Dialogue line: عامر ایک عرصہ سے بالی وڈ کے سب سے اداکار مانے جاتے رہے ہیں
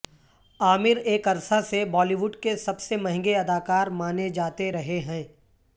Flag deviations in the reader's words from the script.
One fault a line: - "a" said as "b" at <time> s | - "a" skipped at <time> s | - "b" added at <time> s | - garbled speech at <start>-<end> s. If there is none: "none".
- "مہنگے" added at 3.0 s